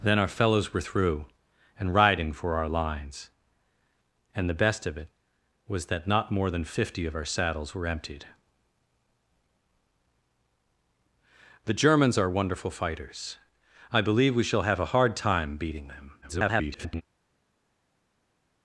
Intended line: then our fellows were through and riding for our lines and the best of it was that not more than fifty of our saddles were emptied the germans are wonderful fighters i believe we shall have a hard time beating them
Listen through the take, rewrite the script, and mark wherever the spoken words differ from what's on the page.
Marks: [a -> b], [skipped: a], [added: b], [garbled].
then our fellows were through and riding for our lines and the best of it was that not more than fifty of our saddles were emptied the germans are wonderful fighters i believe we shall have a hard time beating them [garbled]